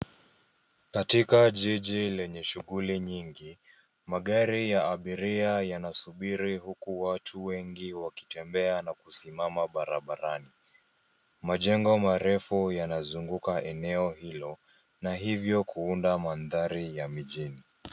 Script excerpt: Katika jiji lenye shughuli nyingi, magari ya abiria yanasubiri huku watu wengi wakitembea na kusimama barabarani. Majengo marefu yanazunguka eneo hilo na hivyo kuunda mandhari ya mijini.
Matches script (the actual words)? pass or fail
pass